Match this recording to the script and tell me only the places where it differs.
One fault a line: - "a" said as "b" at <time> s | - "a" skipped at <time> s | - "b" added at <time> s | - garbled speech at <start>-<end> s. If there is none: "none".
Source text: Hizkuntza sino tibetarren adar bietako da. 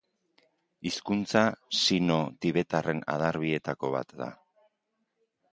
- "bat" added at 4.0 s